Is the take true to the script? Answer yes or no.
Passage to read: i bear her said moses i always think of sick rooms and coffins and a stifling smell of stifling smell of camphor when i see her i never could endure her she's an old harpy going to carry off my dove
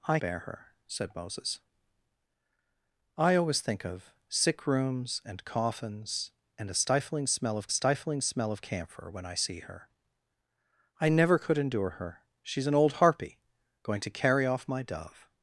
yes